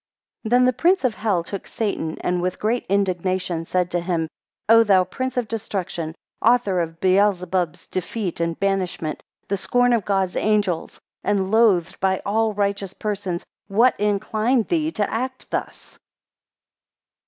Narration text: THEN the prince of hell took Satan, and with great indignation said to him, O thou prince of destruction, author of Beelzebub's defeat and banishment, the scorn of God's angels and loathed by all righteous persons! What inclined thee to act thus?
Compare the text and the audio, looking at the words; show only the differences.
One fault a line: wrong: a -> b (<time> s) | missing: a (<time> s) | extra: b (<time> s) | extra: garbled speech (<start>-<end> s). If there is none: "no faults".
no faults